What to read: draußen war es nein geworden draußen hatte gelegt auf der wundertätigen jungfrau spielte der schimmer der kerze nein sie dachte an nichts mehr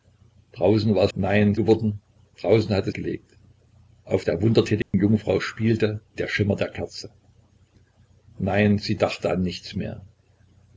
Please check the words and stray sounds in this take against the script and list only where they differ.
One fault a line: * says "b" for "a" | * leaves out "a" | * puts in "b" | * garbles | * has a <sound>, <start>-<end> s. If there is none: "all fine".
* has a dropout, 4.8-4.9 s